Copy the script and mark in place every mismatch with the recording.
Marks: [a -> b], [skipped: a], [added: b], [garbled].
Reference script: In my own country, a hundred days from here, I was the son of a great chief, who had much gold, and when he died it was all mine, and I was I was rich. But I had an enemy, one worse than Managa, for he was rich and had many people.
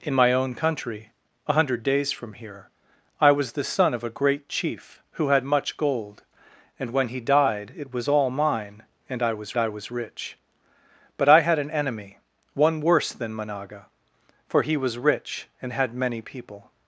In my own country, a hundred days from here, I was the son of a great chief, who had much gold, and when he died it was all mine, and I was I was rich. But I had an enemy, one worse than Managa, for he was rich and had many people.